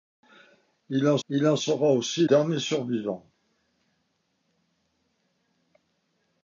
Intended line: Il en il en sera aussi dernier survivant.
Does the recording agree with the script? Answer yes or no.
yes